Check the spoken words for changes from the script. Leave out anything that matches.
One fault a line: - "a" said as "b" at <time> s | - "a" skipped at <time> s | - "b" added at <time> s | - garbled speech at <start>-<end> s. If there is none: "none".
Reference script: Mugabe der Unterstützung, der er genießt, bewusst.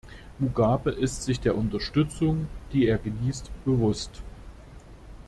- "ist sich" added at 0.9 s
- "der" said as "die" at 2.7 s